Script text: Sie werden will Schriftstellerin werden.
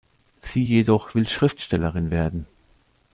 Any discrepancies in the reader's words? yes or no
yes